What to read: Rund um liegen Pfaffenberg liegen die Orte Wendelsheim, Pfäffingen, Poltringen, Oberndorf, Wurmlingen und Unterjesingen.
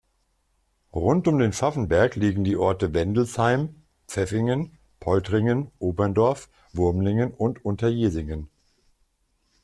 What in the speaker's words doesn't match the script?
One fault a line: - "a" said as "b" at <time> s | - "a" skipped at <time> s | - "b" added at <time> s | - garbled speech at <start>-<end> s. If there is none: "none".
- "liegen" said as "den" at 1.4 s